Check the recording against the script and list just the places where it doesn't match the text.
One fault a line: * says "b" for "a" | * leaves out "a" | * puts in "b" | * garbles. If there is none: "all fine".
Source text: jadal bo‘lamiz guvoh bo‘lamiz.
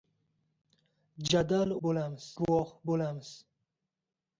all fine